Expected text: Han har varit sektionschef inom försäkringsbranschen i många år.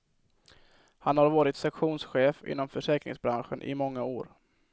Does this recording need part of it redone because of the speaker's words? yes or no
no